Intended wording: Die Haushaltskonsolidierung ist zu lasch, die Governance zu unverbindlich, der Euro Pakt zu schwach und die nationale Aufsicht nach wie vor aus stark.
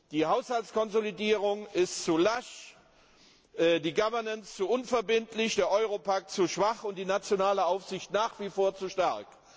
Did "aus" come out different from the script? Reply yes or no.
yes